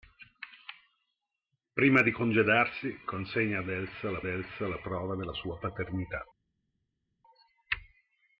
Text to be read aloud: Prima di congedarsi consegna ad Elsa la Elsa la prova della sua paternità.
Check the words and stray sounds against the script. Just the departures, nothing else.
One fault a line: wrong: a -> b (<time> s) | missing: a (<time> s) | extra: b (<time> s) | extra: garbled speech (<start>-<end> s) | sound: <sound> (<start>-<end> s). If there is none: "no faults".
no faults